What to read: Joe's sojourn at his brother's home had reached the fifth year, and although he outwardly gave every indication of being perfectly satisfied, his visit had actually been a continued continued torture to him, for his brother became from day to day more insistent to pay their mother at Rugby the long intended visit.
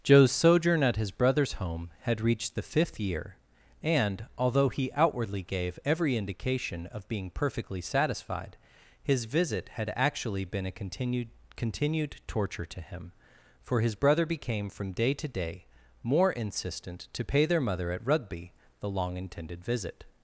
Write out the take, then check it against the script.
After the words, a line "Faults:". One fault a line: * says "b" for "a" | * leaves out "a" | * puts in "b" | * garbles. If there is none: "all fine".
Joe's sojourn at his brother's home had reached the fifth year, and although he outwardly gave every indication of being perfectly satisfied, his visit had actually been a continued continued torture to him, for his brother became from day to day more insistent to pay their mother at Rugby the long intended visit.
Faults:
all fine